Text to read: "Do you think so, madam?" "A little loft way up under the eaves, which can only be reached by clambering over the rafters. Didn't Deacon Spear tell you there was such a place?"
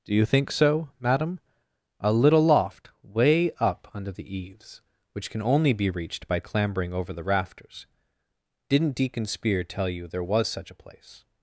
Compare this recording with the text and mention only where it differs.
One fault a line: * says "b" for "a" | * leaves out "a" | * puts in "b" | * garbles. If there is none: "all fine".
all fine